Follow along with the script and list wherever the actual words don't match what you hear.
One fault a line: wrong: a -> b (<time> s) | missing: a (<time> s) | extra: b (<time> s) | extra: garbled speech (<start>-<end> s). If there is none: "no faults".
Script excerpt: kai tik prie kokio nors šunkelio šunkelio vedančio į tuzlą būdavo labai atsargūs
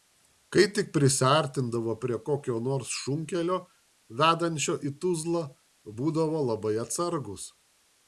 extra: prisiartindavo (0.9 s)
missing: šunkelio (3.6 s)